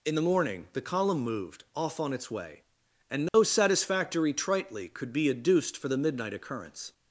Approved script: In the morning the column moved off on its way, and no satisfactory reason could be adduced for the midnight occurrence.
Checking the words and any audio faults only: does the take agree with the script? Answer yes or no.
no